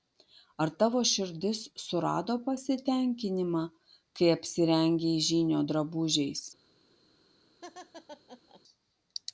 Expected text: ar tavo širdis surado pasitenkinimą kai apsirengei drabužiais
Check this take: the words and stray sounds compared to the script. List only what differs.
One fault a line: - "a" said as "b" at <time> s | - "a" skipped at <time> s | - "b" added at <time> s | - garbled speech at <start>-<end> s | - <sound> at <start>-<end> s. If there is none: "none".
- "žynio" added at 5.3 s
- laugh at 7.6-8.6 s